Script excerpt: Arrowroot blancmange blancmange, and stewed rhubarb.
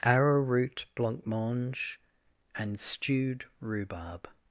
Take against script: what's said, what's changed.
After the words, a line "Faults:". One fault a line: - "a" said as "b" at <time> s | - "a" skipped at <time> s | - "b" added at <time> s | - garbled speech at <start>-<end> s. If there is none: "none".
Arrowroot blancmange, and stewed rhubarb.
Faults:
- "blancmange" skipped at 2.0 s